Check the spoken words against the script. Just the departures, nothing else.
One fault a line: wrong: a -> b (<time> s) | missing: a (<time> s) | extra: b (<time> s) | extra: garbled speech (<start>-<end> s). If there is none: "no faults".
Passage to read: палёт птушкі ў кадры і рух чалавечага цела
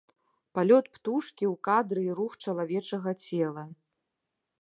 no faults